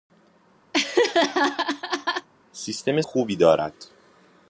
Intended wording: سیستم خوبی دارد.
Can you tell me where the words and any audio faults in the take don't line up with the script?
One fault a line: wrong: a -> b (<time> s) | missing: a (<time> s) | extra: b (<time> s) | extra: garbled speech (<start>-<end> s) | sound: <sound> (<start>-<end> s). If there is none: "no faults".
sound: laugh (0.7-2.3 s)